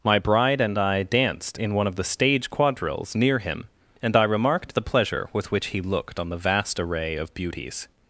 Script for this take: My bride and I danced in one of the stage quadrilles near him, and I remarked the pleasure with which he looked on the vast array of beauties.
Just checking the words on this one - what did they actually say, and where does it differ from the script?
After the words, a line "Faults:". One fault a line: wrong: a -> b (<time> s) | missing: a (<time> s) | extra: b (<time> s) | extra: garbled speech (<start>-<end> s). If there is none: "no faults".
My bride and I danced in one of the stage quadrilles near him, and I remarked the pleasure with which he looked on the vast array of beauties.
Faults:
no faults